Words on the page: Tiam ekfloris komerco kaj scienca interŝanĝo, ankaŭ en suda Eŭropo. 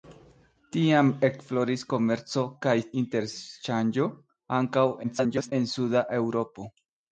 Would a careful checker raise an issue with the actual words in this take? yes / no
yes